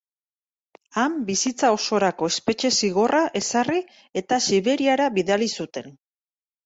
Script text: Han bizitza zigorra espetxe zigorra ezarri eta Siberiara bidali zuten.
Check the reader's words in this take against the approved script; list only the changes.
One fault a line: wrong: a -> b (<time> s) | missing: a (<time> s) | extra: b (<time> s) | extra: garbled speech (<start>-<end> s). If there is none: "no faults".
wrong: zigorra -> osorako (1.8 s)